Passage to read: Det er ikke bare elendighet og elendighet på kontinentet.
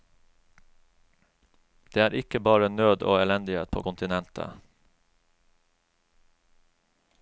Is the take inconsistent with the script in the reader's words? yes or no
yes